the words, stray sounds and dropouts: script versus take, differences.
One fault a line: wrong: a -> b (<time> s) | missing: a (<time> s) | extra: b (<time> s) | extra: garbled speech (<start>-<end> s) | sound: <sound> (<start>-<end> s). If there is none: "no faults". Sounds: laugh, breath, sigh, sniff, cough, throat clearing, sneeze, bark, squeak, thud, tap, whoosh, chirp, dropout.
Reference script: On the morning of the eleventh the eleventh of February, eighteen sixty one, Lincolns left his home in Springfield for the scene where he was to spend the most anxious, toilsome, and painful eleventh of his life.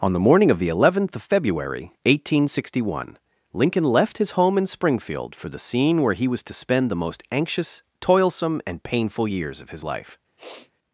missing: the eleventh (1.1 s)
wrong: Lincolns -> Lincoln (3.5 s)
wrong: eleventh -> years (9.3 s)
sound: sniff (10.4-10.7 s)